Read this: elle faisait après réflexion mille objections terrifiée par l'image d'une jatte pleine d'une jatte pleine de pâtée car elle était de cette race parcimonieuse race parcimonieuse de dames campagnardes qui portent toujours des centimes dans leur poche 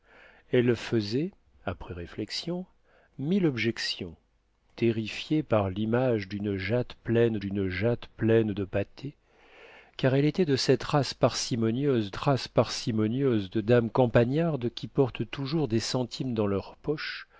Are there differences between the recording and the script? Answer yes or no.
no